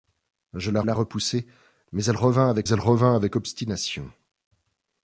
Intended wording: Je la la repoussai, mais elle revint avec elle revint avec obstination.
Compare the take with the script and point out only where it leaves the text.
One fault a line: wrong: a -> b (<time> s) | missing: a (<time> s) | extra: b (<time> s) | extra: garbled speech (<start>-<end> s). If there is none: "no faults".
no faults